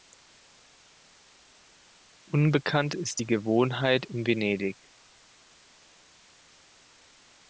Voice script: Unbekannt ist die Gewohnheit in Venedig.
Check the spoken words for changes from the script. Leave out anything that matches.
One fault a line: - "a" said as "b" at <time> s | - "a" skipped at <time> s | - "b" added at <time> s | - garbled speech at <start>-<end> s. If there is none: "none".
none